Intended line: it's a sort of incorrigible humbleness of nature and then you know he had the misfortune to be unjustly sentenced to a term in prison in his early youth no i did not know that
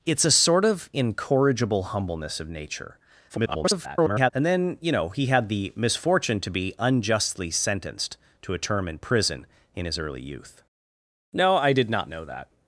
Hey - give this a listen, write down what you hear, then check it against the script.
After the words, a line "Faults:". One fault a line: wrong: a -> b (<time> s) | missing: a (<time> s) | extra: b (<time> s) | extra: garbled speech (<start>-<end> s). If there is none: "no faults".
it's a sort of incorrigible humbleness of nature [garbled] and then you know he had the misfortune to be unjustly sentenced to a term in prison in his early youth no i did not know that
Faults:
extra: garbled speech (3.3-4.3 s)